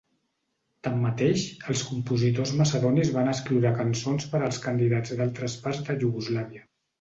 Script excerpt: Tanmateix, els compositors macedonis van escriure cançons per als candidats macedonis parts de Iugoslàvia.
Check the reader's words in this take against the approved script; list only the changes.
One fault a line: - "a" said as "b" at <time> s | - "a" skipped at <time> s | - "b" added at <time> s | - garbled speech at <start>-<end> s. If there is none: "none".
- "macedonis" said as "d"altres" at 5.2 s